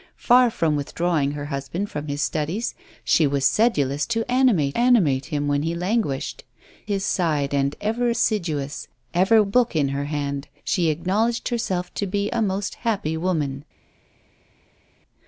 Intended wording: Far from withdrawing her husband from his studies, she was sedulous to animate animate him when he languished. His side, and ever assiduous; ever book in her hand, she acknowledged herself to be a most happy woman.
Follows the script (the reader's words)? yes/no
yes